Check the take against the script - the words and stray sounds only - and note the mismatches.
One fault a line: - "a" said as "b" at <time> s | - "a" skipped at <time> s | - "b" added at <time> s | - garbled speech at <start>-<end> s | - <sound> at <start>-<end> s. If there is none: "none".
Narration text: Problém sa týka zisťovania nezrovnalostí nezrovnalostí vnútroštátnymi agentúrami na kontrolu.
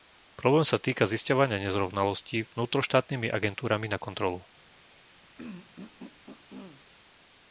- "nezrovnalostí" skipped at 2.4 s
- throat clearing at 5.4-6.8 s